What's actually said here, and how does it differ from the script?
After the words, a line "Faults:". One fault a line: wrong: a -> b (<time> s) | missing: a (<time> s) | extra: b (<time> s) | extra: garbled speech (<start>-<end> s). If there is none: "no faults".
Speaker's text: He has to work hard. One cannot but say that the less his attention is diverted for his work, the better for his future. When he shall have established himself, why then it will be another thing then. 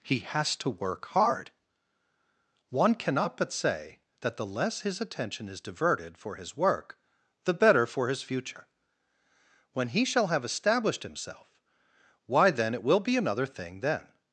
He has to work hard. One cannot but say that the less his attention is diverted for his work, the better for his future. When he shall have established himself, why then it will be another thing then.
Faults:
no faults